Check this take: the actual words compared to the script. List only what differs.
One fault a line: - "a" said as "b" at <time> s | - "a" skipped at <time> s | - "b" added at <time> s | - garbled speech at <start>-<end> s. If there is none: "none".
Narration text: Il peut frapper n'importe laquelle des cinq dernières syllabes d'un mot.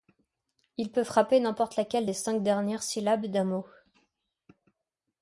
none